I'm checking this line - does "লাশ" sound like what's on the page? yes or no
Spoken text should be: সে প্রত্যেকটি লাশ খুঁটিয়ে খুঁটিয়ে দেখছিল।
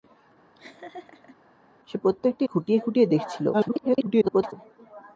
no